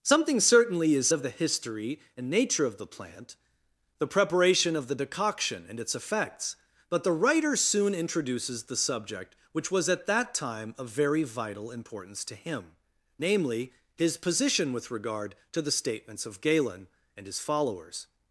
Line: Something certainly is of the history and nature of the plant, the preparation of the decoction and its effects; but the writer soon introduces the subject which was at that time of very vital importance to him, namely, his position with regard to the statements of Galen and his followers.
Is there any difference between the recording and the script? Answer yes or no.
no